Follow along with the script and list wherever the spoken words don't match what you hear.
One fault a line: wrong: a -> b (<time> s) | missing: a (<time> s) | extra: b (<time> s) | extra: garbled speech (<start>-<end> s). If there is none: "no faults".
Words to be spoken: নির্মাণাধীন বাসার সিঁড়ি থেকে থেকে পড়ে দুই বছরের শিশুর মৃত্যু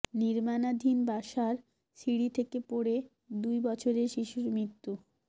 missing: থেকে (2.6 s)